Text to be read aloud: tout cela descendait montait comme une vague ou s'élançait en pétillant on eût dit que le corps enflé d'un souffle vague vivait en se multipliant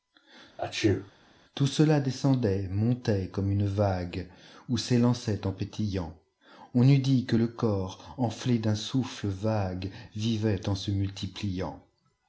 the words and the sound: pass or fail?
fail